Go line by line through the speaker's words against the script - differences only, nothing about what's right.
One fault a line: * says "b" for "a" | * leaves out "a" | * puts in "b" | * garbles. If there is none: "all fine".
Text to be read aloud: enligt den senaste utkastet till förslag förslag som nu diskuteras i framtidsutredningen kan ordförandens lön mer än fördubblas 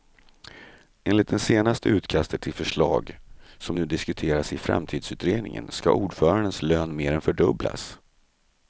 * says "det" for "den"
* leaves out "förslag"
* says "ska" for "kan"